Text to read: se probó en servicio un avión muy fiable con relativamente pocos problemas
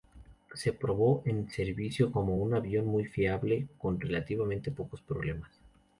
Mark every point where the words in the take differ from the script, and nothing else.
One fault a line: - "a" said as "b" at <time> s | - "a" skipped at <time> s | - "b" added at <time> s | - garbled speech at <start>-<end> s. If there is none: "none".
- "como" added at 2.1 s